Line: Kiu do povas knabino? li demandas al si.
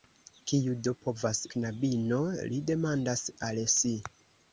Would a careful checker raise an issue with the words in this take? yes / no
no